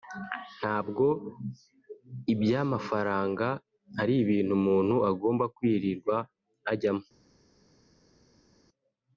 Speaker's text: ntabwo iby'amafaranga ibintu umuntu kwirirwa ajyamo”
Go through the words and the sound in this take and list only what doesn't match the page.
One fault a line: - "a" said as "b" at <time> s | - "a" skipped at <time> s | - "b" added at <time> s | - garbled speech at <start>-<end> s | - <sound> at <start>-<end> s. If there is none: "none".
- "ari" added at 4.0 s
- "agomba" added at 5.1 s